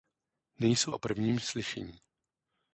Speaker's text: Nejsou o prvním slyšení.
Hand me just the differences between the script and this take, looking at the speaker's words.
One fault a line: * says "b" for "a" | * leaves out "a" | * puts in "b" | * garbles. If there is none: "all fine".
all fine